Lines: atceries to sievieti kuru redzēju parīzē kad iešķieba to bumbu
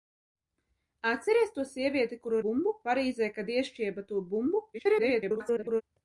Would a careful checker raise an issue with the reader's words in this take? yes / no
yes